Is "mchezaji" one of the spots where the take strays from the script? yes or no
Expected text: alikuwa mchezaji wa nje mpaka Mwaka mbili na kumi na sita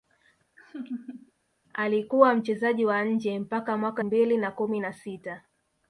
no